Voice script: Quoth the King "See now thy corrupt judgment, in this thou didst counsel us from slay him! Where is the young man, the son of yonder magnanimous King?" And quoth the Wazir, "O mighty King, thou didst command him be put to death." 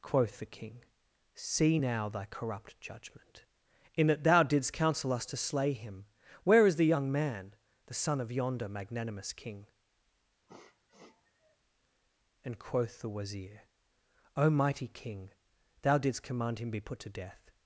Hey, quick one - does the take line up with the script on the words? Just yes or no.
no